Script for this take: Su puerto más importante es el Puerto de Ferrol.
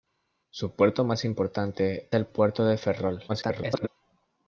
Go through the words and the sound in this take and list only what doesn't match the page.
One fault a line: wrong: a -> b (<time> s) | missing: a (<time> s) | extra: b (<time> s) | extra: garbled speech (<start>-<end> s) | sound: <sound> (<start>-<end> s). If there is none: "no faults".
missing: es (2.1 s)
extra: garbled speech (3.3-3.9 s)